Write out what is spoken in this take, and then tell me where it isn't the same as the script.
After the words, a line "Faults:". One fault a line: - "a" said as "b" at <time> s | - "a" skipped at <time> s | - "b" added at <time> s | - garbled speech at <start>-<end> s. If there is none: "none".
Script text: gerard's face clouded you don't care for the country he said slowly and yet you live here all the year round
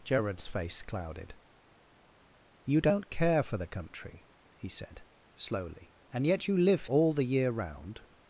gerard's face clouded you don't care for the country he said slowly and yet you live all the year round
Faults:
- "here" skipped at 6.9 s